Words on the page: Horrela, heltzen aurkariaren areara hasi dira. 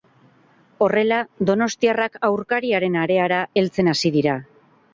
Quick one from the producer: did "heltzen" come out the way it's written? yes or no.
no